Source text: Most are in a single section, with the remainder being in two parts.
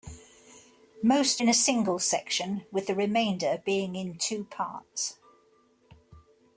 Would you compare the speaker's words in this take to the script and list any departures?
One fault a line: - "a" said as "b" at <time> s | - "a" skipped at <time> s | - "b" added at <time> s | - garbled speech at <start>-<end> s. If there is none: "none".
- "are" skipped at 1.4 s